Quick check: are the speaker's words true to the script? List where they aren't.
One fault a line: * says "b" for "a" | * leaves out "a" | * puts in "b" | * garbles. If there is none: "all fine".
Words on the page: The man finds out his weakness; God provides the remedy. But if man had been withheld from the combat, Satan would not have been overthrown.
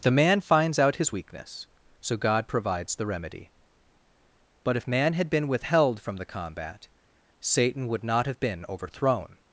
* puts in "so"